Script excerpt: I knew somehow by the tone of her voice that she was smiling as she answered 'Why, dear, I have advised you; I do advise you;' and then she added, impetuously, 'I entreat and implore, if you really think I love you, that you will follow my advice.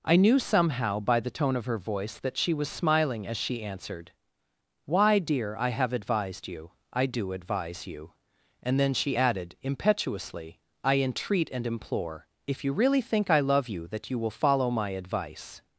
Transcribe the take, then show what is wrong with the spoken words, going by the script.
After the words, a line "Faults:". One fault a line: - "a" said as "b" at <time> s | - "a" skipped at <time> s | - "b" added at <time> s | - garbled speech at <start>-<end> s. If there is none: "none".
I knew somehow by the tone of her voice that she was smiling as she answered 'Why, dear, I have advised you; I do advise you;' and then she added, impetuously, 'I entreat and implore, if you really think I love you, that you will follow my advice.
Faults:
none